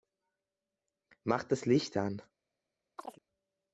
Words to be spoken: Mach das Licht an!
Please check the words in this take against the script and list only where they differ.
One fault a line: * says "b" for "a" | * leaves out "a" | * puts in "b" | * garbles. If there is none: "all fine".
all fine